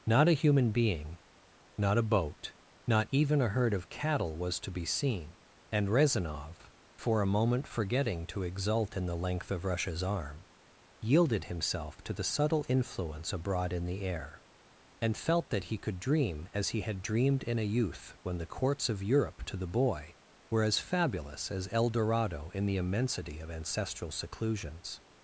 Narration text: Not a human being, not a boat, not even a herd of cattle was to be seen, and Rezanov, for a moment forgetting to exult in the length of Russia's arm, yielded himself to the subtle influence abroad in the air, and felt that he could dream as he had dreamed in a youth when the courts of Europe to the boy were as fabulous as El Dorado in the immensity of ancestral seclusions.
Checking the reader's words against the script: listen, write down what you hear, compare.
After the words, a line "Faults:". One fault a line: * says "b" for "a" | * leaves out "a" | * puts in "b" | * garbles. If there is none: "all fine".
Not a human being, not a boat, not even a herd of cattle was to be seen, and Rezanov, for a moment forgetting to exult in the length of Russia's arm, yielded himself to the subtle influence abroad in the air, and felt that he could dream as he had dreamed in a youth when the courts of Europe to the boy were as fabulous as El Dorado in the immensity of ancestral seclusions.
Faults:
all fine